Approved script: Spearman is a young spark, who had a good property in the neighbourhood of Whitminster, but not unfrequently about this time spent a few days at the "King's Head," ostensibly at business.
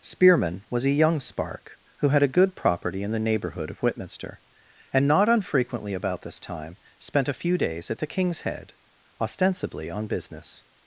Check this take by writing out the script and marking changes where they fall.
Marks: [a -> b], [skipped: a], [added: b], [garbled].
Spearman [is -> was] a young spark, who had a good property in the neighbourhood of Whitminster, [but -> and] not unfrequently about this time spent a few days at the "King's Head," ostensibly [at -> on] business.